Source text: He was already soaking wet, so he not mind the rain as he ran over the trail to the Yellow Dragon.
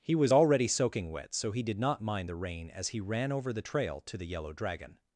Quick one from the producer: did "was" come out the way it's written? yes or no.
yes